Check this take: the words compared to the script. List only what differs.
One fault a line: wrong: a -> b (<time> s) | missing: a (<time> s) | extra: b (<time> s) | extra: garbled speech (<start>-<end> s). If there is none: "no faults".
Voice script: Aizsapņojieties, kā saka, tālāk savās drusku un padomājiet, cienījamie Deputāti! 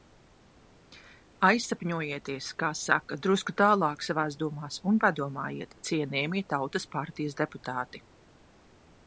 extra: drusku (3.3 s)
wrong: drusku -> domās (4.5 s)
extra: Tautas partijas (6.5 s)